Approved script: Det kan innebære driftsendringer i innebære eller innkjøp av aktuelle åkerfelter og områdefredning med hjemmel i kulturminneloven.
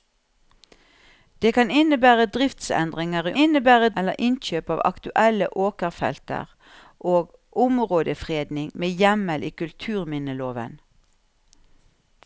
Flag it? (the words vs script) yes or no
no